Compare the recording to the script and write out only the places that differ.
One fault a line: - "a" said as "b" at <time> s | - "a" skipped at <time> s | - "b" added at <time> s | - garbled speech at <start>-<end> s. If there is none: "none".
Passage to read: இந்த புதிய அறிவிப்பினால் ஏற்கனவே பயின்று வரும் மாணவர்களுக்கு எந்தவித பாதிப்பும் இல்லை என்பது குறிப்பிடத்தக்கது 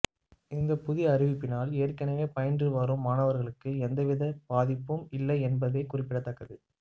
none